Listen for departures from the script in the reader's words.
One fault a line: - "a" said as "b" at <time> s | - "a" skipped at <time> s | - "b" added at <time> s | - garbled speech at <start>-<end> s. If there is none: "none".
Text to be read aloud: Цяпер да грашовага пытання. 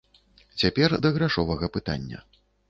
none